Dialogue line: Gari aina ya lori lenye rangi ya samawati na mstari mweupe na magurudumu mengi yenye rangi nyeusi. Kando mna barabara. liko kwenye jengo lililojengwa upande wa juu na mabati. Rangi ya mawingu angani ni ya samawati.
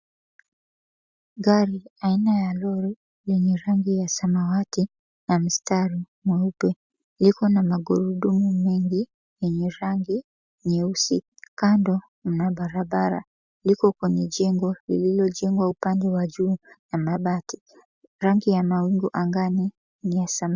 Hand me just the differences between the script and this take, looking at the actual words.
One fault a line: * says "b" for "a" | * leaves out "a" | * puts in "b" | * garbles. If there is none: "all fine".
* puts in "liko"